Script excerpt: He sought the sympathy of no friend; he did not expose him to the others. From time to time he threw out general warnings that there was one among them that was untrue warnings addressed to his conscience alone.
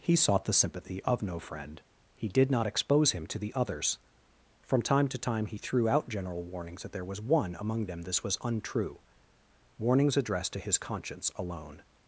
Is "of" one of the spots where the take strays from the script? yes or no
no